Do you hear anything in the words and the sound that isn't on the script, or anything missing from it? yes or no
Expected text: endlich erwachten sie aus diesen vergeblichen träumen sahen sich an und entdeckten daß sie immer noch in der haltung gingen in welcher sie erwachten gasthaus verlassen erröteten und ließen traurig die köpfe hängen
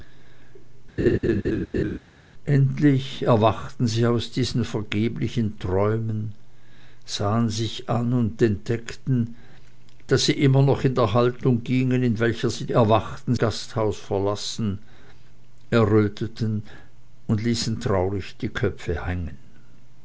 yes